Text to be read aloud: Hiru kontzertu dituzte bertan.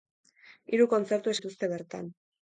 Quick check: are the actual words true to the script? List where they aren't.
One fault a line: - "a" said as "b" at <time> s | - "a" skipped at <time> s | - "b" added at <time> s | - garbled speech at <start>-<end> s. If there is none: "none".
none